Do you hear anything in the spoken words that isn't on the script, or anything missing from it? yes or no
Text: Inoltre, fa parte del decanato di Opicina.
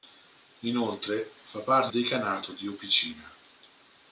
yes